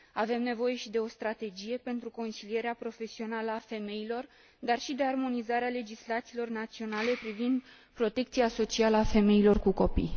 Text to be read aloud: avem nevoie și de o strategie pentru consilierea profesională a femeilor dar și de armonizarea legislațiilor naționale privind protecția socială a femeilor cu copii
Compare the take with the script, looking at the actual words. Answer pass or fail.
pass